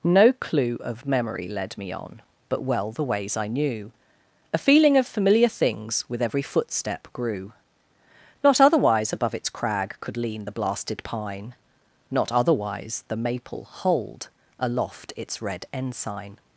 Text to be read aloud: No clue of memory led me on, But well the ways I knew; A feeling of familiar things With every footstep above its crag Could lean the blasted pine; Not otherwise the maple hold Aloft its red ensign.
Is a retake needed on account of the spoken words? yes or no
yes